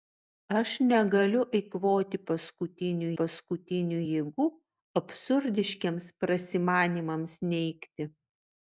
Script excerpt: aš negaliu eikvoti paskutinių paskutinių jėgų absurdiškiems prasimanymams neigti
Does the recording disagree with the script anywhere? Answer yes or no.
no